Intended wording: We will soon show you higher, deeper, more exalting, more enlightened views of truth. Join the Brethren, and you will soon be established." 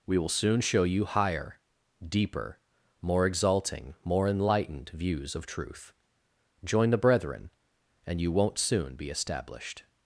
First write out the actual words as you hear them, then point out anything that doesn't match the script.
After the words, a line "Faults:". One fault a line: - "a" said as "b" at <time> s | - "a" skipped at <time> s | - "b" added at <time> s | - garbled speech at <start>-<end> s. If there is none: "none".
We will soon show you higher, deeper, more exalting, more enlightened views of truth. Join the Brethren, and you won't soon be established."
Faults:
- "will" said as "won't" at 8.3 s